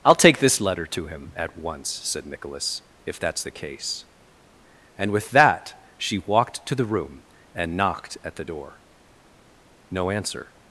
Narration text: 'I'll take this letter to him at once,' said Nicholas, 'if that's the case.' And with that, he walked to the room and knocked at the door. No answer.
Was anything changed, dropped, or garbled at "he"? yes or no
yes